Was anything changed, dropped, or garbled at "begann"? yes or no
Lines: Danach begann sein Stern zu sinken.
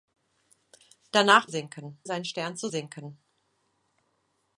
yes